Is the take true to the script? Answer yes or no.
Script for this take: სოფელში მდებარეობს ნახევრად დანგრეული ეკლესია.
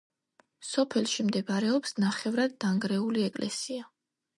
yes